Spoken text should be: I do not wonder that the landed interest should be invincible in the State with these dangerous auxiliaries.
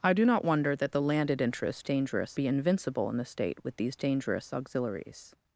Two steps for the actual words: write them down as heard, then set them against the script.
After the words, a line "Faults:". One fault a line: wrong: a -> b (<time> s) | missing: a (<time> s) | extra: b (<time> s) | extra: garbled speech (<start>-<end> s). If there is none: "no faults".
I do not wonder that the landed interest dangerous be invincible in the State with these dangerous auxiliaries.
Faults:
wrong: should -> dangerous (1.8 s)